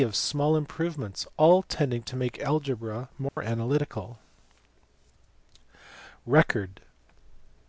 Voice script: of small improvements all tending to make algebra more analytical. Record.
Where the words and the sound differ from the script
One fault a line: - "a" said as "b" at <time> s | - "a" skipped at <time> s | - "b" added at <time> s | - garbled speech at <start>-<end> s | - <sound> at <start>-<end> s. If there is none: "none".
- dropout at 3.3-3.4 s